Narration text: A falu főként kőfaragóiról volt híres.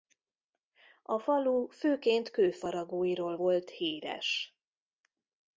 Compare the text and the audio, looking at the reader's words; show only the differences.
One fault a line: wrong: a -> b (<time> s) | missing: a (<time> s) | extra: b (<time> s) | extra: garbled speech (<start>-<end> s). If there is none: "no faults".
no faults